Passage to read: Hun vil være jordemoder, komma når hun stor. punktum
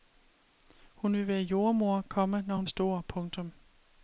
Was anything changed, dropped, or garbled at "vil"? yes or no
no